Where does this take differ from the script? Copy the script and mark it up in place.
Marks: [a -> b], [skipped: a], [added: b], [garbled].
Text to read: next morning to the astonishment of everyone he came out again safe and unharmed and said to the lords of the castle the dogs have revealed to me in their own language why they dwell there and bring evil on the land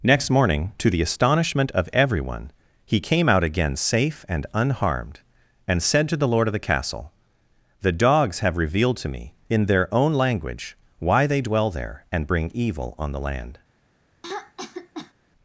next morning to the astonishment of everyone he came out again safe and unharmed and said to the [lords -> lord] of the castle the dogs have revealed to me in their own language why they dwell there and bring evil on the land